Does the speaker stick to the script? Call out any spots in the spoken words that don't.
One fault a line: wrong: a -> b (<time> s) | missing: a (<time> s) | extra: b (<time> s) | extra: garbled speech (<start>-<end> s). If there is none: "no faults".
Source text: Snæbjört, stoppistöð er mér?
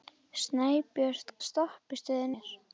no faults